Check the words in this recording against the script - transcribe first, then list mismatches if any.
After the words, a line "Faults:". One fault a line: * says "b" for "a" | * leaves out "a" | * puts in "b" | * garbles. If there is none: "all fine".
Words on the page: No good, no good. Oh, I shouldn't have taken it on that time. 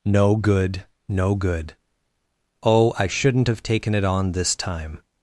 No good, no good. Oh, I shouldn't have taken it on this time.
Faults:
* says "this" for "that"